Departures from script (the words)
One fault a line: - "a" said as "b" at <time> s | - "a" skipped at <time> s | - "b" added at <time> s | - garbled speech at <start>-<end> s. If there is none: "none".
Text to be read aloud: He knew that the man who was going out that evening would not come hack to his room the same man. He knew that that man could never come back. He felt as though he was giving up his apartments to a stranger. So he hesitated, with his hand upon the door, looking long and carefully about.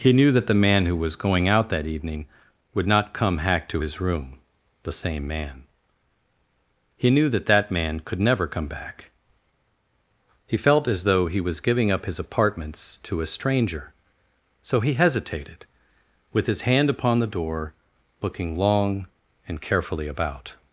none